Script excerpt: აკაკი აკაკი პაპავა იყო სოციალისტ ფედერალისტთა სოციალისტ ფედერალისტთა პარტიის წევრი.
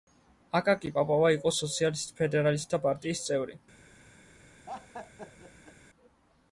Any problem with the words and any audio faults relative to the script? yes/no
yes